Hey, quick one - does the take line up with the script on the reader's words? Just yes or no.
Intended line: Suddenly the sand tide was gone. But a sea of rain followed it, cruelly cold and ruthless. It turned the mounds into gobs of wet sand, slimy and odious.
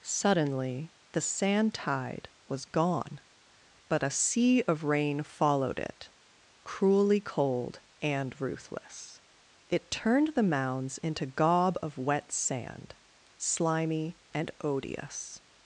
no